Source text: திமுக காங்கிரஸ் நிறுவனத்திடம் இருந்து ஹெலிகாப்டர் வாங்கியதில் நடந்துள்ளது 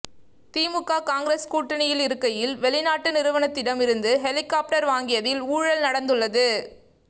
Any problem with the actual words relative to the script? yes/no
yes